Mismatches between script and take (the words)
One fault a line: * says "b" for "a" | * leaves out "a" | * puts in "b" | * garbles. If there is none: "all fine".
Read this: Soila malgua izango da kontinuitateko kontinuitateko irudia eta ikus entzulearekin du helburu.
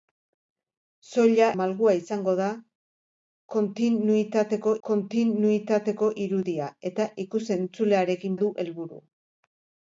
all fine